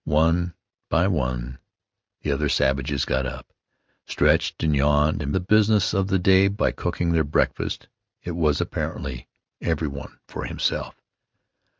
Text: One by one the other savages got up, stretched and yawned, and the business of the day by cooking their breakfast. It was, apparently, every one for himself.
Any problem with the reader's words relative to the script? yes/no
no